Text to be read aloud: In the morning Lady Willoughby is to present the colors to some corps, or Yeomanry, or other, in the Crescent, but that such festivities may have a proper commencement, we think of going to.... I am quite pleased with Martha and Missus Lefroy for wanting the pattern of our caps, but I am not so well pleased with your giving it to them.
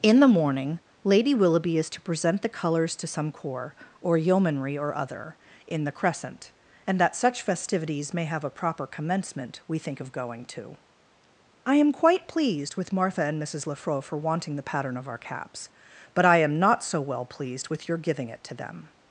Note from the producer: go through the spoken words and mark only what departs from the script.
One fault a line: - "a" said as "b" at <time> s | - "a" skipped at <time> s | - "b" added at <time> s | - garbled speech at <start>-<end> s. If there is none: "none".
- "but" said as "and" at 6.9 s